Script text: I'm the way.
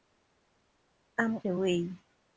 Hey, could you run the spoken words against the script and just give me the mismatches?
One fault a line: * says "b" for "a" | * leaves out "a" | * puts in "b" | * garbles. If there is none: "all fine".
all fine